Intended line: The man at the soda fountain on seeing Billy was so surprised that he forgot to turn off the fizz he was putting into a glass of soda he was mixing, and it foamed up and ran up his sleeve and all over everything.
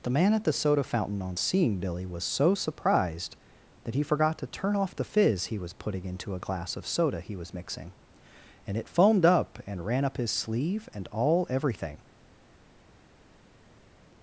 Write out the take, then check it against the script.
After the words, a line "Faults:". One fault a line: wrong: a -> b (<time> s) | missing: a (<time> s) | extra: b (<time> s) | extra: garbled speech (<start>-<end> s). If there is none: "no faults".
The man at the soda fountain on seeing Billy was so surprised that he forgot to turn off the fizz he was putting into a glass of soda he was mixing, and it foamed up and ran up his sleeve and all everything.
Faults:
missing: over (11.5 s)